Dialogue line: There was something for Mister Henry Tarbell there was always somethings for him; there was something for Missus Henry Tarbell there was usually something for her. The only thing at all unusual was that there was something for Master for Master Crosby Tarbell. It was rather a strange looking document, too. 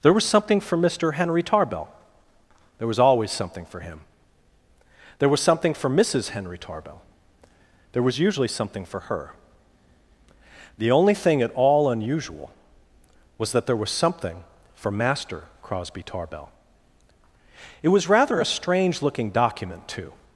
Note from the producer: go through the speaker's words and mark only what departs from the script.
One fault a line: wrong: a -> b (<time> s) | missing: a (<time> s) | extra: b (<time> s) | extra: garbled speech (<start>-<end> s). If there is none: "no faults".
wrong: somethings -> something (3.3 s)
missing: for Master (15.4 s)